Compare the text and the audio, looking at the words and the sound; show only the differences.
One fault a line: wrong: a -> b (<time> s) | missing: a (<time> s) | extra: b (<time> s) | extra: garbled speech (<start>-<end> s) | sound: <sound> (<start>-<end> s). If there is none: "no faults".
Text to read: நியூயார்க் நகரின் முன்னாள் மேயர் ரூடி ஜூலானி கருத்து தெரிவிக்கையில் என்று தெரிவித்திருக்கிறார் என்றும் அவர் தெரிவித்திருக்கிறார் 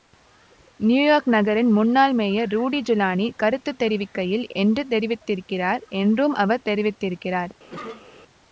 sound: cough (7.7-8.1 s)